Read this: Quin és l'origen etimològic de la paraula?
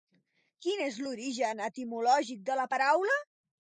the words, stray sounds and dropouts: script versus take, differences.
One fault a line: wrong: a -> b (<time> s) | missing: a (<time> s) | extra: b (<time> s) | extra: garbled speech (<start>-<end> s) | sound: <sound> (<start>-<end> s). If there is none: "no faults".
no faults